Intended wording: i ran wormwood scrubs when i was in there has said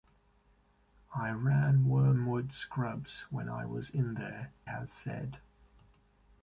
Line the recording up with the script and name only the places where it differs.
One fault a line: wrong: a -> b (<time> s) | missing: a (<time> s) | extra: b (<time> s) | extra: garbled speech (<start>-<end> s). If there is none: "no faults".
no faults